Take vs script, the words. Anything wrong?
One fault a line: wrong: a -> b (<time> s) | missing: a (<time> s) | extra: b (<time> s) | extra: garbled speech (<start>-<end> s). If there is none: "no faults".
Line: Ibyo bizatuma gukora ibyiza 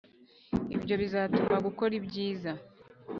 no faults